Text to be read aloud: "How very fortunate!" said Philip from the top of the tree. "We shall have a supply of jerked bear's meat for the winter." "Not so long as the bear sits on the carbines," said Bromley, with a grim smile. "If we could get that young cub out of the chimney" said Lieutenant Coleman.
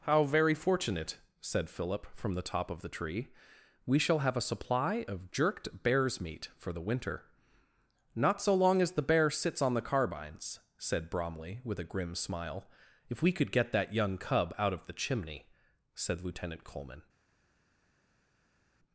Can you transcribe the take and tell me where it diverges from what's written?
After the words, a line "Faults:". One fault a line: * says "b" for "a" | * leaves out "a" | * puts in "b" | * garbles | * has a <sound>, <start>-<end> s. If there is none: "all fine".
"How very fortunate!" said Philip from the top of the tree. "We shall have a supply of jerked bear's meat for the winter." "Not so long as the bear sits on the carbines," said Bromley, with a grim smile. "If we could get that young cub out of the chimney" said Lieutenant Coleman.
Faults:
all fine